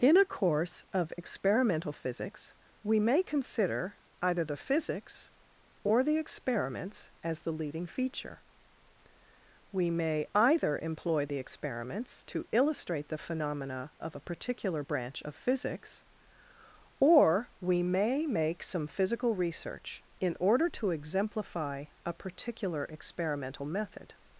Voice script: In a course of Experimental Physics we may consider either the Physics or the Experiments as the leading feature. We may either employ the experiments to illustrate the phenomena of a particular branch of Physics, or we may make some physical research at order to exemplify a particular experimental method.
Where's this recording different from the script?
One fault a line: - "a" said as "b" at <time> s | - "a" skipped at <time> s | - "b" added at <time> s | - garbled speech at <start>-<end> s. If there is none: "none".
- "at" said as "in" at 20.2 s